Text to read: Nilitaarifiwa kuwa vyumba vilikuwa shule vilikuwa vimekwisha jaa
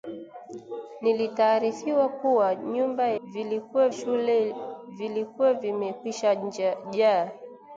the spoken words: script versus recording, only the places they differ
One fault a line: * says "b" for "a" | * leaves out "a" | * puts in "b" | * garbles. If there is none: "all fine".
all fine